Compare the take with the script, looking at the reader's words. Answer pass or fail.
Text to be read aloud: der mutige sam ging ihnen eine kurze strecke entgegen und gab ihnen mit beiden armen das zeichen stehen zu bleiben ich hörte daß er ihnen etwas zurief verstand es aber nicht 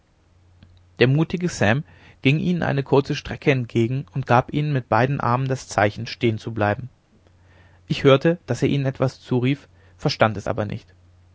pass